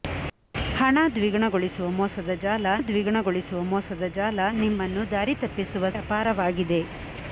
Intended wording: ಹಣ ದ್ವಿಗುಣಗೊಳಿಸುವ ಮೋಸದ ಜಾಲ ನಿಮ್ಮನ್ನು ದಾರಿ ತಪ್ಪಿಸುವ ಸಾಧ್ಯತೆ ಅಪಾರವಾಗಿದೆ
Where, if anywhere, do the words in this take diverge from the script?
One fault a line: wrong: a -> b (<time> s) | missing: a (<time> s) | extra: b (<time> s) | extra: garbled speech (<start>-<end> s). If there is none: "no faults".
extra: ದ್ವಿಗುಣಗೊಳಿಸುವ ಮೋಸದ ಜಾಲ (2.8 s)
missing: ಸಾಧ್ಯತೆ (5.9 s)